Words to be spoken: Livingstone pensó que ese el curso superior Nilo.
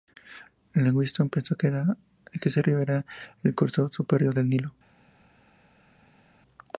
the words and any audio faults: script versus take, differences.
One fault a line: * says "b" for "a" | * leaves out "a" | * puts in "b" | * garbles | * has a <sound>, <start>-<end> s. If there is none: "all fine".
* puts in "río era"
* puts in "del"